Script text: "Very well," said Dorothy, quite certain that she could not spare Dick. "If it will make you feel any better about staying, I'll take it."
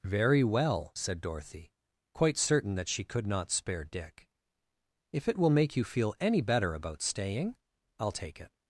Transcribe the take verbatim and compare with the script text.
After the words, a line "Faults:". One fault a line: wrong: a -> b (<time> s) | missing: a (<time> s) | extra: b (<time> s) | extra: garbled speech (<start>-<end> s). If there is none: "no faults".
"Very well," said Dorothy, quite certain that she could not spare Dick. "If it will make you feel any better about staying, I'll take it."
Faults:
no faults